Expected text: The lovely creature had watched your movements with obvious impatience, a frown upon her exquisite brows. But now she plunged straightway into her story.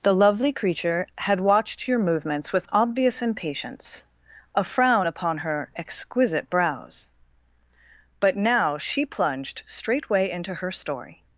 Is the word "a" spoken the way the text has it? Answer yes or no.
yes